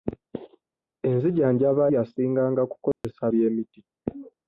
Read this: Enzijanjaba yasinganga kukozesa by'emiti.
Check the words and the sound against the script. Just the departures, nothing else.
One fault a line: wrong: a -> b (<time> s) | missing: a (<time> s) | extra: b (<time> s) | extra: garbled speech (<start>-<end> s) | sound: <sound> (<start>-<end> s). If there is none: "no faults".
sound: dropout (2.9-3.0 s)